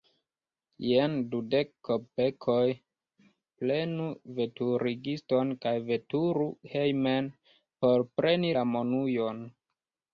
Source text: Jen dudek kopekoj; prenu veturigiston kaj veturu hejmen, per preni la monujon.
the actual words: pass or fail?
fail